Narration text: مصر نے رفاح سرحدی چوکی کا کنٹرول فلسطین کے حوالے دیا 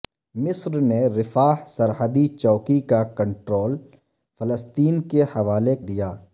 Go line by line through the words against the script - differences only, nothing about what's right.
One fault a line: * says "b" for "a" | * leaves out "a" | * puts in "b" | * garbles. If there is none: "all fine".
all fine